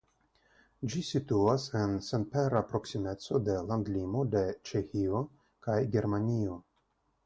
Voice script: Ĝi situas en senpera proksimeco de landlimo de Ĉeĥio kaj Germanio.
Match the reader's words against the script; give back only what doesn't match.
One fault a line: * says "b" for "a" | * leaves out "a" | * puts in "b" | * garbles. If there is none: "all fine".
all fine